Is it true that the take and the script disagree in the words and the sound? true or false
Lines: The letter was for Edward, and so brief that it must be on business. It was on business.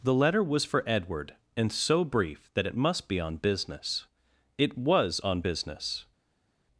false